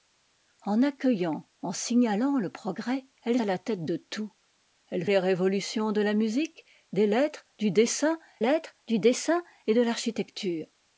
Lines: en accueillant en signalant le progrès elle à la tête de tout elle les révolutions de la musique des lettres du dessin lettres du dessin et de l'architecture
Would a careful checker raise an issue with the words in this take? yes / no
no